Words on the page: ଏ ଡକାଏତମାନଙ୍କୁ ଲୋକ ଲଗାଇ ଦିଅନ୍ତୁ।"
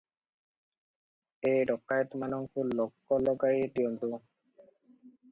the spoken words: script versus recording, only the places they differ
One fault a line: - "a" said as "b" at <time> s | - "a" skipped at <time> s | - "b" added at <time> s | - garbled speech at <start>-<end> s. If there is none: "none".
none